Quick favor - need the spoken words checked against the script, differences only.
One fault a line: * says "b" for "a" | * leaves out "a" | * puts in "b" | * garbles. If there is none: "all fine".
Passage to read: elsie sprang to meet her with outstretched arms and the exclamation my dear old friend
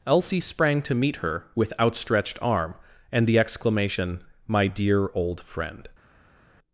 * says "arm" for "arms"